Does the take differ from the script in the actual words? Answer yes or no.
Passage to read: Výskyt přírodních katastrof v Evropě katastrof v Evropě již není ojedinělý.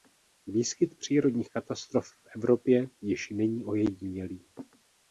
yes